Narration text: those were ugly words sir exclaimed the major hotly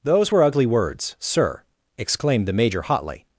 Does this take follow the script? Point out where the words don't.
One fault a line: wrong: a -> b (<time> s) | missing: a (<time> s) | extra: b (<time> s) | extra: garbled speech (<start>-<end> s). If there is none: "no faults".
no faults